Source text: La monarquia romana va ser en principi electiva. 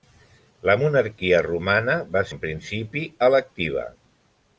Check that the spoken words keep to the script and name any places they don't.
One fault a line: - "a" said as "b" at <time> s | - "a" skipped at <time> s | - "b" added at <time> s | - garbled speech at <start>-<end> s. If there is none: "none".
- "ser" skipped at 2.2 s